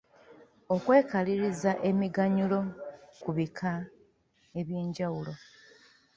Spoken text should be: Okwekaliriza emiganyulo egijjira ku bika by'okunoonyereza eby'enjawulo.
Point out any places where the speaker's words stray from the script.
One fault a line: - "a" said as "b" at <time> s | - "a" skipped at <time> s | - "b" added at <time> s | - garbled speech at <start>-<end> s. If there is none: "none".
- "egijjira" skipped at 2.6 s
- "by'okunoonyereza" skipped at 3.7 s